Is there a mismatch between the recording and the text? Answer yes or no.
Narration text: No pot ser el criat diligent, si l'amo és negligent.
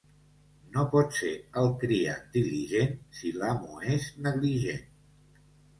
no